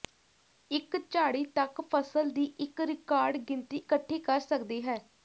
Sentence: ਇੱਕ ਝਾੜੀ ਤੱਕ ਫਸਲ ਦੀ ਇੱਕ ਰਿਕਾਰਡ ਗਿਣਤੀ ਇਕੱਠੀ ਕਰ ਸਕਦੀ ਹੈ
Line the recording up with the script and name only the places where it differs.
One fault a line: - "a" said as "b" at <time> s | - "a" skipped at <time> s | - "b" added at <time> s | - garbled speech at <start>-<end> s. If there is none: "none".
none